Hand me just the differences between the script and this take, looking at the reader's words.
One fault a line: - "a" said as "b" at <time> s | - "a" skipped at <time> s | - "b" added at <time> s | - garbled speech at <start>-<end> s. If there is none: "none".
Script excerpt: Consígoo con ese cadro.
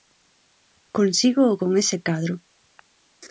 none